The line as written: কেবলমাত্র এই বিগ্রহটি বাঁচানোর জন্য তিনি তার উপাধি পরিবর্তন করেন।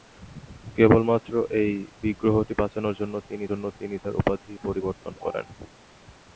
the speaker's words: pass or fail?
fail